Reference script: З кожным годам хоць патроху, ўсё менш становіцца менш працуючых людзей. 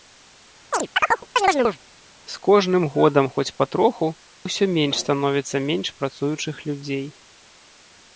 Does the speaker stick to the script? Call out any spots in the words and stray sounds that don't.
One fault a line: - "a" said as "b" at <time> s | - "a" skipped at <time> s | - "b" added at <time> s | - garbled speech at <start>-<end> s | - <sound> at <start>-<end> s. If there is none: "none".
- chirp at 0.7-1.8 s